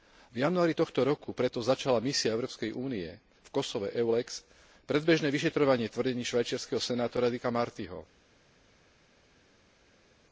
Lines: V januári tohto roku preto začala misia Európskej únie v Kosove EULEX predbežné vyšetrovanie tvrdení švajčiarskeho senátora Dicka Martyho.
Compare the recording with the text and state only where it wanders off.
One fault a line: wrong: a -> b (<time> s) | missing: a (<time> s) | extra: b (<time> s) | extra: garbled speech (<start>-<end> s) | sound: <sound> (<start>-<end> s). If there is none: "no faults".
no faults